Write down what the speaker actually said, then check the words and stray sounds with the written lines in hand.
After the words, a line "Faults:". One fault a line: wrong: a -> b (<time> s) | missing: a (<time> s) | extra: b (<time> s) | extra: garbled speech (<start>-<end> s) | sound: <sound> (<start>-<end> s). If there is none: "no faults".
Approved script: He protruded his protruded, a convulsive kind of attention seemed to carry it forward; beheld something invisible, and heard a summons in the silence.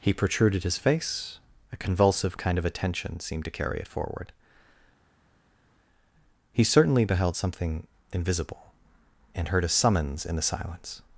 He protruded his face, a convulsive kind of attention seemed to carry it forward; he certainly beheld something invisible, and heard a summons in the silence.
Faults:
wrong: protruded -> face (0.8 s)
extra: he certainly (6.5 s)